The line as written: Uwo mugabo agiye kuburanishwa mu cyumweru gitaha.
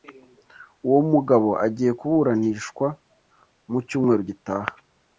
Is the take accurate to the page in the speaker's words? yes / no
yes